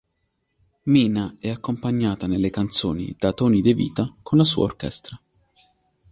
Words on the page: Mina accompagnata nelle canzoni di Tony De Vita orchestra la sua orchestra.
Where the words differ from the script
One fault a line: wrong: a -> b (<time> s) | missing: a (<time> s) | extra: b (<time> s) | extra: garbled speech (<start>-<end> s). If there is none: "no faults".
extra: è (1.4 s)
wrong: di -> da (3.2 s)
wrong: orchestra -> con (4.2 s)